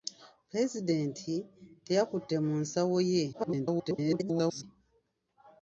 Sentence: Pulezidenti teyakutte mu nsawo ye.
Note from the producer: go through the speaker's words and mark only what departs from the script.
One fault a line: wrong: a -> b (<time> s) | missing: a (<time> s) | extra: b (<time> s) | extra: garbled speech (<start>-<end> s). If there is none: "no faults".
extra: garbled speech (3.3-4.6 s)